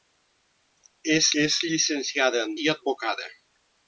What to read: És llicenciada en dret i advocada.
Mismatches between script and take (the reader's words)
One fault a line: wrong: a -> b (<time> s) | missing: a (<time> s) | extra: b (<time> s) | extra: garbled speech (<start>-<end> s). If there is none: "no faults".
extra: és (1.4 s)
missing: dret (2.6 s)